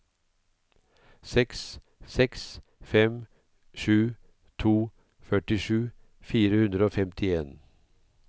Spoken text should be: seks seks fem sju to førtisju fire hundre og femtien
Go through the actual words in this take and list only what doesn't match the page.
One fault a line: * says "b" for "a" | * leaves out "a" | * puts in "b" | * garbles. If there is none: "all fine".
all fine